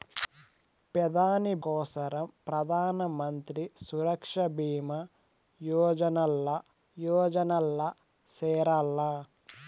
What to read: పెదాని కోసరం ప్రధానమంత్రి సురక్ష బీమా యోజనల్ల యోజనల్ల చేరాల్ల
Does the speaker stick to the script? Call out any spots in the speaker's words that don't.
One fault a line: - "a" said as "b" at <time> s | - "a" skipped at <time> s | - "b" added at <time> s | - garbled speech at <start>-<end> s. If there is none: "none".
none